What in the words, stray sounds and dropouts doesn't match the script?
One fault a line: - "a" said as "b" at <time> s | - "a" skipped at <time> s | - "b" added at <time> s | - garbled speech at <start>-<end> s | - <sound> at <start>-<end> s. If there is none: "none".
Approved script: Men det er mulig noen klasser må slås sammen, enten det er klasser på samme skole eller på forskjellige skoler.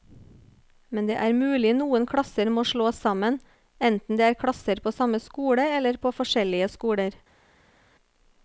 none